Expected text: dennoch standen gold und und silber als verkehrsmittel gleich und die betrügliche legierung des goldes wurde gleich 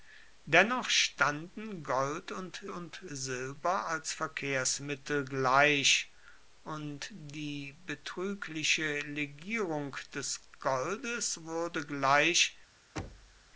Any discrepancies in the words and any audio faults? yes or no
yes